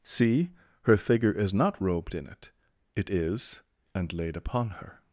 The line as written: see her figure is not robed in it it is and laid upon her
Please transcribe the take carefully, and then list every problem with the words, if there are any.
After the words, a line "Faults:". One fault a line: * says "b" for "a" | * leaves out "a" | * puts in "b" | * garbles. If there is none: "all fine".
see her figure is not robed in it it is and laid upon her
Faults:
all fine